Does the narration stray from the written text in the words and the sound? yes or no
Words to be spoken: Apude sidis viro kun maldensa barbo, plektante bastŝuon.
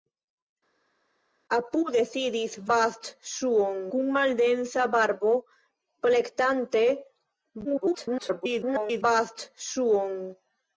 yes